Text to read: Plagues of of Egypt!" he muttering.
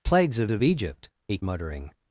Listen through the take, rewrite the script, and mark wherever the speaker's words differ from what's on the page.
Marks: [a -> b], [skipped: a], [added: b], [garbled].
Plagues of of Egypt!" he muttering.